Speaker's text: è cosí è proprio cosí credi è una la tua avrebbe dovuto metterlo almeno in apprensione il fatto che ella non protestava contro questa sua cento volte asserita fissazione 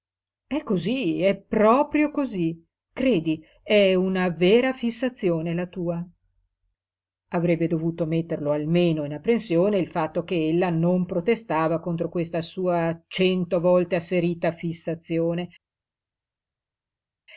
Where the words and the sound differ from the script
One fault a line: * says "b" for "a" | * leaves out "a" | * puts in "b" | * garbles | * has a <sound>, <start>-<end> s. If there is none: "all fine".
* puts in "vera fissazione"